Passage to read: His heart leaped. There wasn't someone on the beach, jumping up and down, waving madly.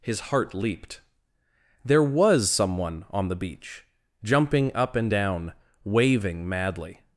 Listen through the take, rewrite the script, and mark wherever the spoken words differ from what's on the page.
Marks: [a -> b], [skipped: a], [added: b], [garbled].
His heart leaped. There [wasn't -> was] someone on the beach, jumping up and down, waving madly.